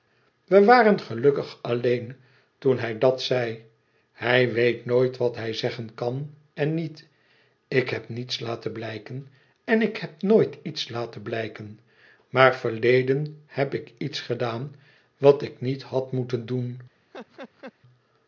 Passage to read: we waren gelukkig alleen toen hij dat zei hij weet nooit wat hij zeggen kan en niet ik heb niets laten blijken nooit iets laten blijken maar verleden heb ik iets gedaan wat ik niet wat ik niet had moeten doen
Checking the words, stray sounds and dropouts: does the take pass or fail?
fail